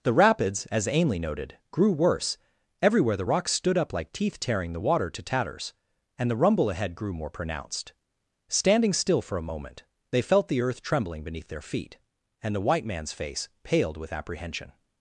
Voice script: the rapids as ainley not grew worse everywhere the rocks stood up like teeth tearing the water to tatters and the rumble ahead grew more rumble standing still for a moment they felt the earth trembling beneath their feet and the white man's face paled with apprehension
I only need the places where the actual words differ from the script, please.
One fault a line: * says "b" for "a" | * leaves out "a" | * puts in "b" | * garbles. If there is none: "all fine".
* says "noted" for "not"
* says "pronounced" for "rumble"